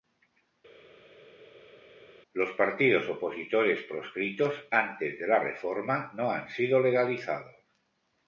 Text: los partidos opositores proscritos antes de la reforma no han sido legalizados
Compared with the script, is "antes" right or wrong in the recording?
right